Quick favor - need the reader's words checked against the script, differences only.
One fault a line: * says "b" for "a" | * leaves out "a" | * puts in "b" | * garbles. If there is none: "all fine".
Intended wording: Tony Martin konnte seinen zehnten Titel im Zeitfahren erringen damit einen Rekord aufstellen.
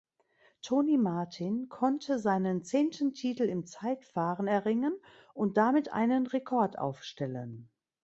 * puts in "und"